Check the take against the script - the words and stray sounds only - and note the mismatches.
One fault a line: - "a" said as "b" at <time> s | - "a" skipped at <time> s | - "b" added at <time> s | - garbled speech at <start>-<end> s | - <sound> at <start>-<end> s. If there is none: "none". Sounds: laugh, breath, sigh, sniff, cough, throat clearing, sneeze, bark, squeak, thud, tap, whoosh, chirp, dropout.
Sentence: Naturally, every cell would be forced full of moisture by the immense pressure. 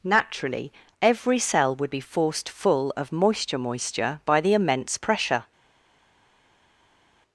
- "moisture" added at 3.6 s